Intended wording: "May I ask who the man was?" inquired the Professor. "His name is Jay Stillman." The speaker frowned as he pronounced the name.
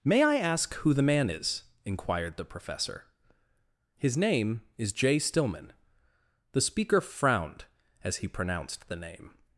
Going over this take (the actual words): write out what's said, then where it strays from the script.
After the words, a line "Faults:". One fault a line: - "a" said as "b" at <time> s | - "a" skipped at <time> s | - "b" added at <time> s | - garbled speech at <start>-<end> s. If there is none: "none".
"May I ask who the man is?" inquired the Professor. "His name is Jay Stillman." The speaker frowned as he pronounced the name.
Faults:
- "was" said as "is" at 1.3 s